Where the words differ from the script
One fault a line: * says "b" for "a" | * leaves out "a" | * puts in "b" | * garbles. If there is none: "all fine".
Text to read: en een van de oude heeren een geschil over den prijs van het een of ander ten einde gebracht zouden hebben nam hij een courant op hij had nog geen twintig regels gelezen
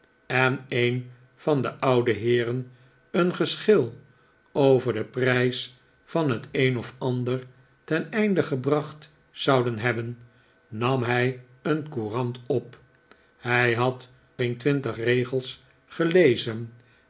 * leaves out "nog"